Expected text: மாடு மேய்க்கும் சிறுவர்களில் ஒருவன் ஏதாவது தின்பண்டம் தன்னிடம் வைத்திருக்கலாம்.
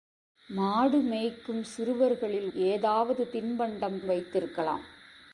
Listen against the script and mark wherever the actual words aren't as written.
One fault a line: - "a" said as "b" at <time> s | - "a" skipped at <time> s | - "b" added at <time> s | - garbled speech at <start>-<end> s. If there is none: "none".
- "ஒருவன்" skipped at 2.5 s
- "தன்னிடம்" skipped at 4.0 s